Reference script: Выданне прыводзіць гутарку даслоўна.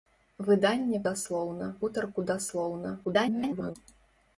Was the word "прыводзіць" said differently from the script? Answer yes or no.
yes